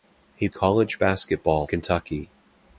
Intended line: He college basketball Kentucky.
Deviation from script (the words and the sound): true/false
false